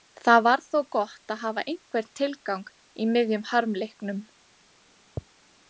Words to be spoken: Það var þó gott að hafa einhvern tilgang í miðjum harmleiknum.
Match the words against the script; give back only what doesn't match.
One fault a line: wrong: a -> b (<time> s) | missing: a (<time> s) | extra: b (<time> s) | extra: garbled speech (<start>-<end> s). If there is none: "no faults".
no faults